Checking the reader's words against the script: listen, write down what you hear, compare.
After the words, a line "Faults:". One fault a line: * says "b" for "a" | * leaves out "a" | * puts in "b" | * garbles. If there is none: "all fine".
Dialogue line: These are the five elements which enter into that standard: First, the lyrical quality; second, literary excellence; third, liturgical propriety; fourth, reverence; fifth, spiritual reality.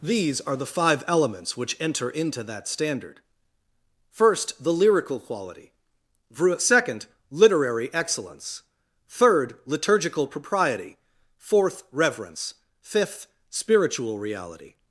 These are the five elements which enter into that standard: First, the lyrical quality; second, literary excellence; third, liturgical propriety; fourth, reverence; fifth, spiritual reality.
Faults:
all fine